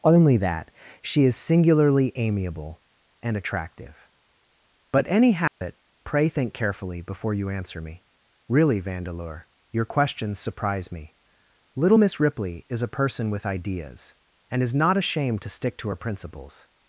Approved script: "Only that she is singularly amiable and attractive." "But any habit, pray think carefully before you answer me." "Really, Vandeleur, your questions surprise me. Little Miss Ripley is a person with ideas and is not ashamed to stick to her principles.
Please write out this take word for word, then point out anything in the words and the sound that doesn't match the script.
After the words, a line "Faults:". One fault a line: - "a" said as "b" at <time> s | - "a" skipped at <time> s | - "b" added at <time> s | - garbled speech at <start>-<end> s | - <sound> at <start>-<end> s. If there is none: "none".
"Only that she is singularly amiable and attractive." "But any habit, pray think carefully before you answer me." "Really, Vandeleur, your questions surprise me. Little Miss Ripley is a person with ideas and is not ashamed to stick to her principles.
Faults:
- dropout at 5.5-5.6 s